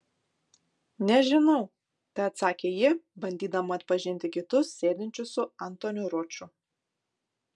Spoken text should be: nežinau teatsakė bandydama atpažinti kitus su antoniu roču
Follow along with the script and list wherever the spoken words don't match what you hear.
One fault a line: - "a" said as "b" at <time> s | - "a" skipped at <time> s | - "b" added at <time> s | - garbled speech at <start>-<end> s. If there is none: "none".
- "ji" added at 2.7 s
- "sėdinčius" added at 4.8 s